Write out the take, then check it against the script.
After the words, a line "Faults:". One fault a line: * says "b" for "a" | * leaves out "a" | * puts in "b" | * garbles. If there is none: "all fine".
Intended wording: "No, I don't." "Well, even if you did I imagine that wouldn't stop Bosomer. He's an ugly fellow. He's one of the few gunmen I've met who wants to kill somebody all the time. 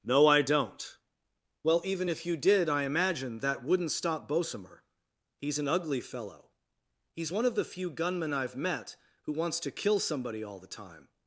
"No, I don't." "Well, even if you did I imagine that wouldn't stop Bosomer. He's an ugly fellow. He's one of the few gunmen I've met who wants to kill somebody all the time.
Faults:
all fine